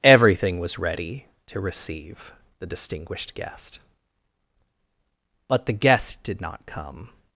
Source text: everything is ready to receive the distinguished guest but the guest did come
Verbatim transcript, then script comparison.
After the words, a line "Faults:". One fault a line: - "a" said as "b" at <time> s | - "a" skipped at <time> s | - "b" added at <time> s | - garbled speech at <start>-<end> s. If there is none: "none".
everything was ready to receive the distinguished guest but the guest did not come
Faults:
- "is" said as "was" at 0.6 s
- "not" added at 6.4 s